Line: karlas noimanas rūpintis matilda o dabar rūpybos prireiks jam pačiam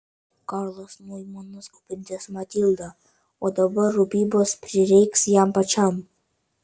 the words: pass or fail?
pass